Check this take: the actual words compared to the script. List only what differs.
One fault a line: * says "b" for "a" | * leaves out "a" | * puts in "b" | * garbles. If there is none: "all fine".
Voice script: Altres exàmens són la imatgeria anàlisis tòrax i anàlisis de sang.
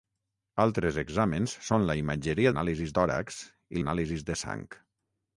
all fine